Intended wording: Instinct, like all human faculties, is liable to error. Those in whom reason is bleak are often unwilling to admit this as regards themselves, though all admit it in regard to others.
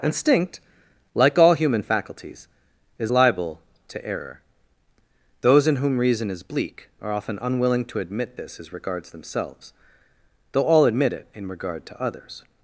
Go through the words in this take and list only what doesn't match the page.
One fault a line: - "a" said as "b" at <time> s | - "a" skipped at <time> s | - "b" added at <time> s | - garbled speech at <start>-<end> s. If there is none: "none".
none